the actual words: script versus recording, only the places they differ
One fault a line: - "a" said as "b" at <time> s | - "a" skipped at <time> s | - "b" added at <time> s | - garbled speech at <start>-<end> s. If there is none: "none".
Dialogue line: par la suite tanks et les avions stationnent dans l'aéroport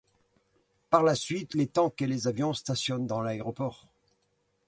- "les" added at 1.5 s